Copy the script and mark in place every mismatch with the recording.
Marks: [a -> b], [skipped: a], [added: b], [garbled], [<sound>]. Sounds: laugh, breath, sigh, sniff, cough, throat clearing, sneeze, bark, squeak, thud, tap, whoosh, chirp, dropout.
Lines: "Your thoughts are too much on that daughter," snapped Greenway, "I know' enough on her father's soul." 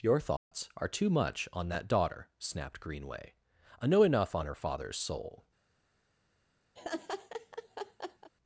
"Your thoughts [dropout] are too much on that daughter," snapped Greenway, "I know' enough on her father's soul." [laugh]